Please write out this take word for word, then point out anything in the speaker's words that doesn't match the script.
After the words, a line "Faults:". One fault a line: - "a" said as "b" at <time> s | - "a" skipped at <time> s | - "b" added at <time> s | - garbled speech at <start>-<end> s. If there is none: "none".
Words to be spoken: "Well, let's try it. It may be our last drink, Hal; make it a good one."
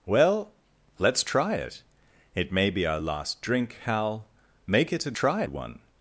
"Well, let's try it. It may be our last drink, Hal; make it a try one."
Faults:
- "good" said as "try" at 5.1 s